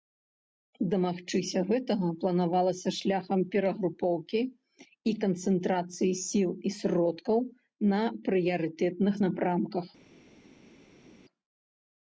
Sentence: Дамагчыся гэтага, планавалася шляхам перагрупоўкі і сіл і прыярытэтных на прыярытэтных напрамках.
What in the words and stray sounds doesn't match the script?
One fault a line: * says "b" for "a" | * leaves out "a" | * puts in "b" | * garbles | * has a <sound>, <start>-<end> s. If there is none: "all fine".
* puts in "канцэнтрацыі"
* says "сродкаў" for "прыярытэтных"